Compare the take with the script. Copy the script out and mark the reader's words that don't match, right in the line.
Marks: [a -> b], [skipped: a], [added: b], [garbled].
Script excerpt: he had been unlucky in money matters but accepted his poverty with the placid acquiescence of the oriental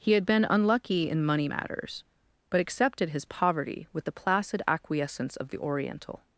he had been unlucky in money matters but accepted his poverty with the placid acquiescence of the oriental